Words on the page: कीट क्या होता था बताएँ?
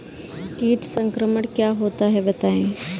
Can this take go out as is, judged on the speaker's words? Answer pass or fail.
fail